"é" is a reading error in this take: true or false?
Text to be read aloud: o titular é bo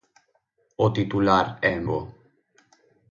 false